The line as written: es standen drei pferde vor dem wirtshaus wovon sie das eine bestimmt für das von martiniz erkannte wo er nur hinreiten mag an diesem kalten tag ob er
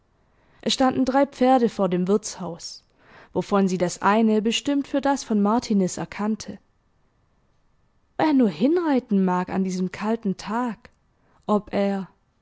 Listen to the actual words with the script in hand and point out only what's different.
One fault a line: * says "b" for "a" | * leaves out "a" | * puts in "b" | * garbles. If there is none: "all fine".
* leaves out "wo"